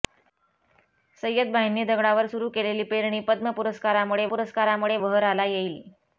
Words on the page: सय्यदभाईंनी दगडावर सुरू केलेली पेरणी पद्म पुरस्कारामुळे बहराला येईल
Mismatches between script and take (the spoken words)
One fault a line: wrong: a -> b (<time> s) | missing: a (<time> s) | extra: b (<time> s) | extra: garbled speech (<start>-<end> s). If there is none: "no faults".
extra: पुरस्कारामुळे (4.3 s)